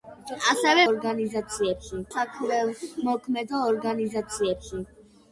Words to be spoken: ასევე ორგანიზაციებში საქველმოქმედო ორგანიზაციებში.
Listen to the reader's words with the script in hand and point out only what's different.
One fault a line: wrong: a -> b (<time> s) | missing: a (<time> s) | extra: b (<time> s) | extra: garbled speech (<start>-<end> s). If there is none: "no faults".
no faults